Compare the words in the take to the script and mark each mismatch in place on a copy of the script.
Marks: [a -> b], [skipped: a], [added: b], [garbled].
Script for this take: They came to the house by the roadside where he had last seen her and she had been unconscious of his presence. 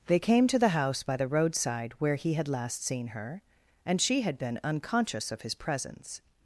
They came to the house by the roadside where he had last seen her and she had been unconscious of his presence.